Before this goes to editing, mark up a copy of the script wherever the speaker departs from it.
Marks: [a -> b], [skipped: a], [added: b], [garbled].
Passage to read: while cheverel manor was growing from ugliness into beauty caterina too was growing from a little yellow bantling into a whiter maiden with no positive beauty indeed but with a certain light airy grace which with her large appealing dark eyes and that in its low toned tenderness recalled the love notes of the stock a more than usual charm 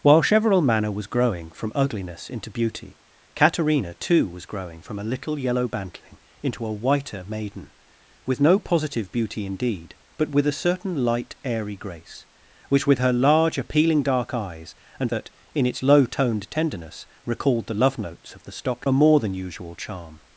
while cheverel manor was growing from ugliness into beauty caterina too was growing from a little yellow bantling into a whiter maiden with no positive beauty indeed but with a certain light airy grace which with her large appealing dark eyes and that in its low toned tenderness recalled the love notes of the stock a more than usual charm